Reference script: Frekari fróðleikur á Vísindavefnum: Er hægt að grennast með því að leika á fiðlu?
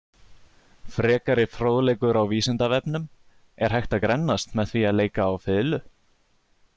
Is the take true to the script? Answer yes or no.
yes